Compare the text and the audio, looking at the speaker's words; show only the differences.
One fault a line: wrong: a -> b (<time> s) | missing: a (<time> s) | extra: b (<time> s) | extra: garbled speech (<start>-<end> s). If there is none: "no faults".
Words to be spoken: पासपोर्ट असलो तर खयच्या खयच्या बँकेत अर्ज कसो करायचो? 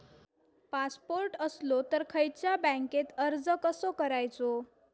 missing: खयच्या (2.6 s)